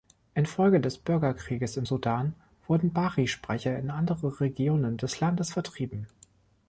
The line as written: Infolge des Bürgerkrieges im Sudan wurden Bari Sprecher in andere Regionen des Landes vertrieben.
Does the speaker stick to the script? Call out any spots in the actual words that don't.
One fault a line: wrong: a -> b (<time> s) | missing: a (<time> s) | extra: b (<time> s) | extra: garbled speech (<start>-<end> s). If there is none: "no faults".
no faults